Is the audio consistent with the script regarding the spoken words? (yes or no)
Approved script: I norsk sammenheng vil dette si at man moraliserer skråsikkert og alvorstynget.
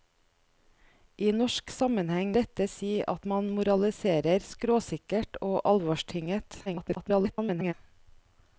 no